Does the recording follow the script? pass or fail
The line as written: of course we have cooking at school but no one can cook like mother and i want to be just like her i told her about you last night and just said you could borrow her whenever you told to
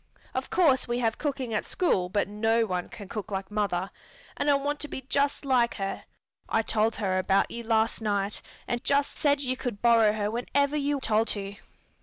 pass